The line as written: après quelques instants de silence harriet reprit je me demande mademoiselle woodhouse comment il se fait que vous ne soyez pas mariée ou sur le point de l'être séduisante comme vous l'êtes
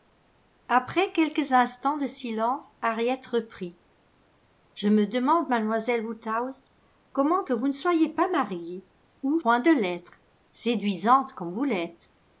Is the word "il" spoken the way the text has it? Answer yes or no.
no